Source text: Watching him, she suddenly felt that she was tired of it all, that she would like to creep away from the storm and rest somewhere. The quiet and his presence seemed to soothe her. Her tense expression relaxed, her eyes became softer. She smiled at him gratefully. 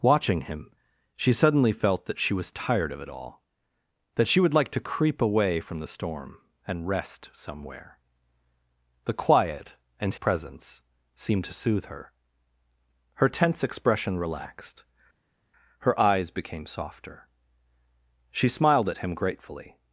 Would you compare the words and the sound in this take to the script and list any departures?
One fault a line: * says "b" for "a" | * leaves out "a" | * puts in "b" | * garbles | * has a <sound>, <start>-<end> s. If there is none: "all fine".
* leaves out "his"